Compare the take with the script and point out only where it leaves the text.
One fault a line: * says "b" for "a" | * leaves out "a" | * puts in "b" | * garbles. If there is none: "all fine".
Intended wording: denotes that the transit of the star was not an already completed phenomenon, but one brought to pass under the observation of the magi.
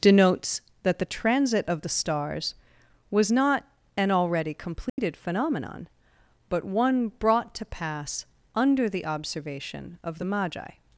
* says "stars" for "star"